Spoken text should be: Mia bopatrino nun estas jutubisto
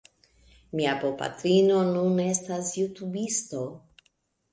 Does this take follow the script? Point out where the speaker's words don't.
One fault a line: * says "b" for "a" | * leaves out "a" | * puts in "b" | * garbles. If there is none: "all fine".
all fine